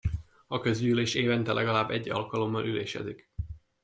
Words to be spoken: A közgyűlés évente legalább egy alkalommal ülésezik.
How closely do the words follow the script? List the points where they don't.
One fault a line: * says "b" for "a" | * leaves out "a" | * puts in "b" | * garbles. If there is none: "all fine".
all fine